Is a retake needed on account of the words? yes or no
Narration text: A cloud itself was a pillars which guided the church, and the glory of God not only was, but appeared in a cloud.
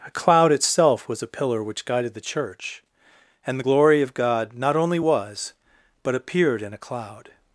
yes